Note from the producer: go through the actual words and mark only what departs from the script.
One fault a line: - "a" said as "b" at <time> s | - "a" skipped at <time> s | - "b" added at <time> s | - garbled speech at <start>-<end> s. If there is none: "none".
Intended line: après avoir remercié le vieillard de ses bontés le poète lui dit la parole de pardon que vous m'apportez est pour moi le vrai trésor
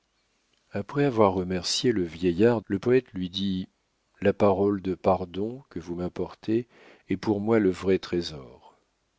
- "de ses bontés" skipped at 2.6 s